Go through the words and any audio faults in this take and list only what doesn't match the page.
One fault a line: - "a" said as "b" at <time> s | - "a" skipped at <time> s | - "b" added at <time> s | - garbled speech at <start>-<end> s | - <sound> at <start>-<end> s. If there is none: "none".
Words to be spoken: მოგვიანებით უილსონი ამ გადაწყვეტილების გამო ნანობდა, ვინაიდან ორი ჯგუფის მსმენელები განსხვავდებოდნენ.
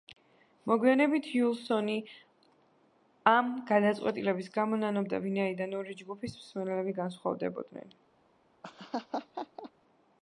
- laugh at 8.6-9.7 s